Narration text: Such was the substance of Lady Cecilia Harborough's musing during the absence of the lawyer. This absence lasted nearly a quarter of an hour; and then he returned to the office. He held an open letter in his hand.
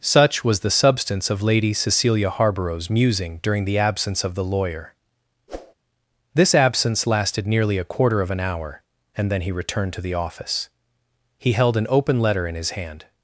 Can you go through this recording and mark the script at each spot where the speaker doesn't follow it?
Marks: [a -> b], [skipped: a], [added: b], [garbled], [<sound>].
Such was the substance of Lady Cecilia Harborough's musing during the absence of the lawyer. [whoosh] This absence lasted nearly a quarter of an hour; and then he returned to the office. He held an open letter in his hand.